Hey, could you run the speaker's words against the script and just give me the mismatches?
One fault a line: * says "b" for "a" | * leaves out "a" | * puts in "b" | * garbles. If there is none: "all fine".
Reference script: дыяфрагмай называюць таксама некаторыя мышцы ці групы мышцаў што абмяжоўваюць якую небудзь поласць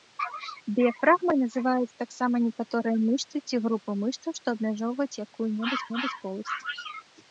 * puts in "небудзь"